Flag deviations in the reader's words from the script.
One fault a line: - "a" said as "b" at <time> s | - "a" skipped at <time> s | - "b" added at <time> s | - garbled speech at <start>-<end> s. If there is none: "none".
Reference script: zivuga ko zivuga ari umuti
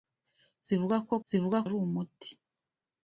none